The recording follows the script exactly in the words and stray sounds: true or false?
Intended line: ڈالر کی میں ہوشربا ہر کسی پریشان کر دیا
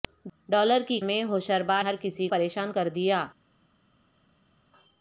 true